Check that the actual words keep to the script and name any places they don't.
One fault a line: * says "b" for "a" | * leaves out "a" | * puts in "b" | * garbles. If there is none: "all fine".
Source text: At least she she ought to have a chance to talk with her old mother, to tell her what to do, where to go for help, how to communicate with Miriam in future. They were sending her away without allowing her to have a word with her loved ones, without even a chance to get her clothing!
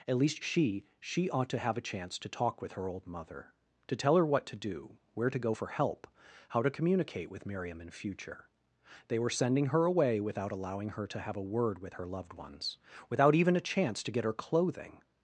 all fine